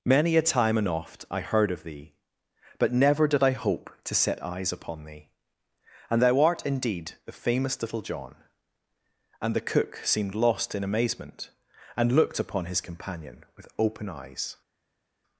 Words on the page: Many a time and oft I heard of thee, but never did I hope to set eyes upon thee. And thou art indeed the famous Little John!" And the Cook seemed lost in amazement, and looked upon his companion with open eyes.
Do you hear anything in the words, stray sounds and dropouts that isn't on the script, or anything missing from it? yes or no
no